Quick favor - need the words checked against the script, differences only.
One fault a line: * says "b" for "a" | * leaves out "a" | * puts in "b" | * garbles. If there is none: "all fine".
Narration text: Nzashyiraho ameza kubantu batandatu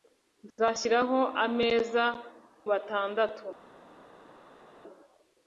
* leaves out "kubantu"